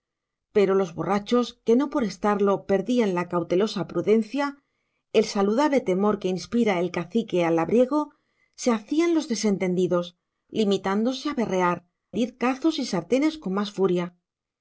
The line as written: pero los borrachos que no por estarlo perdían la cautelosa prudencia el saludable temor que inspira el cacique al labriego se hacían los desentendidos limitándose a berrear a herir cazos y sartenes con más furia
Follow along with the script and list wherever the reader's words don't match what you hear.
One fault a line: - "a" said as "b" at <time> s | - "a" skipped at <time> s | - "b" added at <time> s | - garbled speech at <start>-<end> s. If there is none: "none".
- "a" skipped at 11.8 s